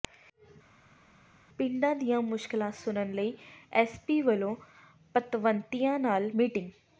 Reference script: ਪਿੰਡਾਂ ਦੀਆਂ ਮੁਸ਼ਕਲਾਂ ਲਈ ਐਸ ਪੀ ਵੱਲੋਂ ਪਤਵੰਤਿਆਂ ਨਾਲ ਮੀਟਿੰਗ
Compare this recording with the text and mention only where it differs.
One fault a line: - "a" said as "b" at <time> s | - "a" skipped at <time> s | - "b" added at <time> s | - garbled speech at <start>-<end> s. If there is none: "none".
- "ਸੁਣਨ" added at 2.7 s